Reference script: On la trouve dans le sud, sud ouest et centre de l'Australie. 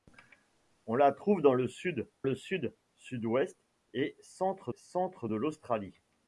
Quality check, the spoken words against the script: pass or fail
fail